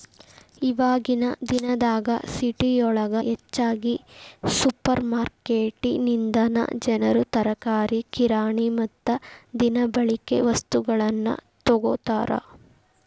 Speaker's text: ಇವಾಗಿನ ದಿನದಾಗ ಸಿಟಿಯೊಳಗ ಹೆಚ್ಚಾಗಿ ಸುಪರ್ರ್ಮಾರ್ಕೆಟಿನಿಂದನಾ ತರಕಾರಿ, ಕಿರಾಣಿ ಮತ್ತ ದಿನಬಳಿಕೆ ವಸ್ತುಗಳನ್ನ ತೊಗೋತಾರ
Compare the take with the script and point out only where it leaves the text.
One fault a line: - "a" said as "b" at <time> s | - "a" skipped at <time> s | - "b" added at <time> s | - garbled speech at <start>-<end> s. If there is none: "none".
- "ಜನರು" added at 6.9 s